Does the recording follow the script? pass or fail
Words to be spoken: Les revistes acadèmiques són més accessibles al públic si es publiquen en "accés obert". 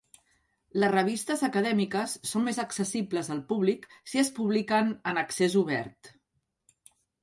pass